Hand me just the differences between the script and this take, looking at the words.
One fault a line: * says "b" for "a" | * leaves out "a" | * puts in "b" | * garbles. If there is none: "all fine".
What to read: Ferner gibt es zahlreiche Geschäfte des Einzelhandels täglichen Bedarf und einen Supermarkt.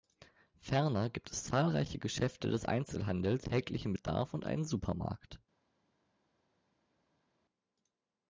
all fine